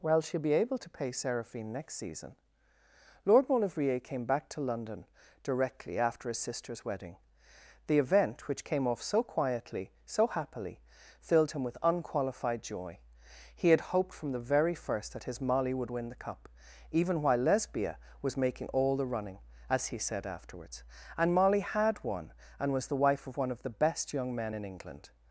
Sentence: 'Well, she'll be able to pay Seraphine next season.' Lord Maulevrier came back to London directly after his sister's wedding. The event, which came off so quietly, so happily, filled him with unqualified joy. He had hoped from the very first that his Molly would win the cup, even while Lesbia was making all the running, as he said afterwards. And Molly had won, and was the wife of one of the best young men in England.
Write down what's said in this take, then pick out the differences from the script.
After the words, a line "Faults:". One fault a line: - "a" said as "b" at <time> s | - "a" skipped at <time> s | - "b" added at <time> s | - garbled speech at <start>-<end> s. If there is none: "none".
'Well, she'll be able to pay Seraphine next season.' Lord Maulevrier came back to London directly after his sister's wedding. The event, which came off so quietly, so happily, filled him with unqualified joy. He had hoped from the very first that his Molly would win the cup, even while Lesbia was making all the running, as he said afterwards. And Molly had won, and was the wife of one of the best young men in England.
Faults:
none